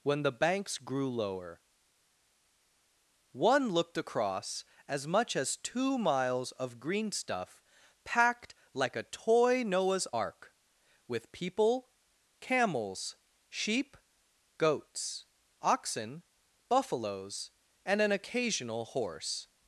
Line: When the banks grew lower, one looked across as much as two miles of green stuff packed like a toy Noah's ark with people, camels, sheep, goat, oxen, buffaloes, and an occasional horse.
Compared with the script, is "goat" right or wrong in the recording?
wrong